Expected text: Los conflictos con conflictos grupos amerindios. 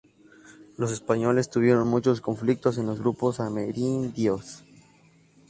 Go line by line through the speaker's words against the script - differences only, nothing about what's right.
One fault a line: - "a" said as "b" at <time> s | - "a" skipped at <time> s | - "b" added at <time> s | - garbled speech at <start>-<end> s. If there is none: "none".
- "españoles tuvieron muchos" added at 0.9 s
- "conflictos" said as "los" at 2.9 s